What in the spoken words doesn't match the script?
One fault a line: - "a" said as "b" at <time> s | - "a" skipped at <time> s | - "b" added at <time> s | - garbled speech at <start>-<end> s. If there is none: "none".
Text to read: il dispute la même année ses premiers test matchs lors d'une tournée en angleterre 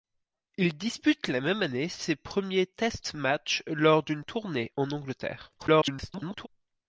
- garbled speech at 5.6-6.5 s